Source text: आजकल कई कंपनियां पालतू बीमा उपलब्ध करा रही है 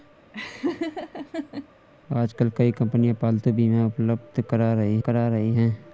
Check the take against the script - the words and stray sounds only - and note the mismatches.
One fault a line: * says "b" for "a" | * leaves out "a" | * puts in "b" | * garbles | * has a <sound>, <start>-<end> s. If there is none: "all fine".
* has a laugh, 0.3-1.7 s
* puts in "करा रही"